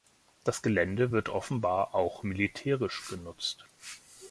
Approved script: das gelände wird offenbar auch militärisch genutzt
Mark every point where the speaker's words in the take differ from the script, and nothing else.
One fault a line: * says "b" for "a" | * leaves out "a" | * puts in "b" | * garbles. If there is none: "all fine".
all fine